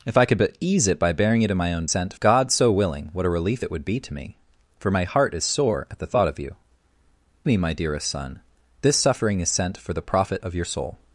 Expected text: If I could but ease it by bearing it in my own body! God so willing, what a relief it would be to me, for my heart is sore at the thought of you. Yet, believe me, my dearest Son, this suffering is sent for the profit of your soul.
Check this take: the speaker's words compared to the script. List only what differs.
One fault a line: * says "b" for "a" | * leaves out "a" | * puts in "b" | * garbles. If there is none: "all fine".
* says "sent" for "body"
* leaves out "Yet believe"